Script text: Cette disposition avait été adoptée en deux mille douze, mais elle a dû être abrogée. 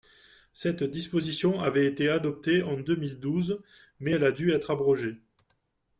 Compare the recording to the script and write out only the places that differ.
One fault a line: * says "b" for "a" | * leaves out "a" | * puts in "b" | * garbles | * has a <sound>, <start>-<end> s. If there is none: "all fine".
all fine